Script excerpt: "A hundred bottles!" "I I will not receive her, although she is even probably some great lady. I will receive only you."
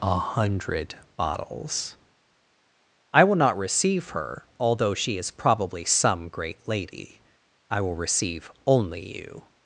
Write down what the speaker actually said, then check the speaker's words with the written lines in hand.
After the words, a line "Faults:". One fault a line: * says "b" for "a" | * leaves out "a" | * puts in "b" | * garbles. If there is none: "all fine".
"A hundred bottles!" "I will not receive her, although she is probably some great lady. I will receive only you."
Faults:
* leaves out "I"
* leaves out "even"